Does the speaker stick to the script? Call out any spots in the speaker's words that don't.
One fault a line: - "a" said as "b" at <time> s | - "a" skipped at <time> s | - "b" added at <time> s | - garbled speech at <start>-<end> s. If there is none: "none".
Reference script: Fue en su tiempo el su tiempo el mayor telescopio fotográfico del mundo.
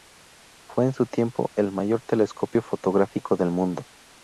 - "su tiempo el" skipped at 1.7 s